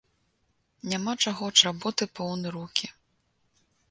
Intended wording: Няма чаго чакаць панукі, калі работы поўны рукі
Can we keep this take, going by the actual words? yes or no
no